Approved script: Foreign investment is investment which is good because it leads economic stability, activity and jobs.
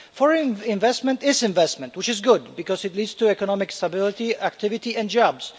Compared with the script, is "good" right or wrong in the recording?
right